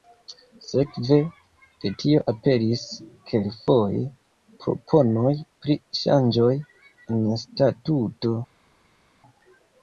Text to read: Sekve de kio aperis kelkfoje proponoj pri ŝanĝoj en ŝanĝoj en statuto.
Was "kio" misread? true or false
true